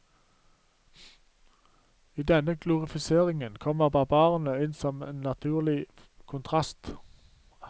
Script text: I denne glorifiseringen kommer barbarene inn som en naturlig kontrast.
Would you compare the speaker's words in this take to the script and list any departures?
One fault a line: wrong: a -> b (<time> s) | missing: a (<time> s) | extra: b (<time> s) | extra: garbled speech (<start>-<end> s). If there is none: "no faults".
no faults